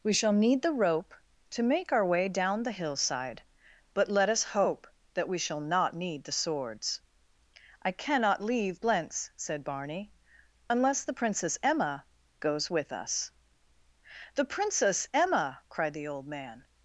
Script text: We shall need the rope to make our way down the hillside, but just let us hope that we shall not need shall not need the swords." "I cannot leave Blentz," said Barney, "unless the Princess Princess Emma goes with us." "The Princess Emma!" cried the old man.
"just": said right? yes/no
no